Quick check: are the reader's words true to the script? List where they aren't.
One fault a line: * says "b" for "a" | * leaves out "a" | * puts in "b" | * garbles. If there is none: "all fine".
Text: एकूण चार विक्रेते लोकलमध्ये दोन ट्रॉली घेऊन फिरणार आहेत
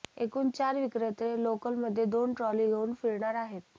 all fine